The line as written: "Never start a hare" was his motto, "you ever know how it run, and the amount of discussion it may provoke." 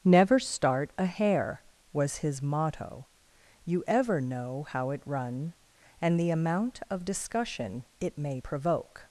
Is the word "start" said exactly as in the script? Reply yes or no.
yes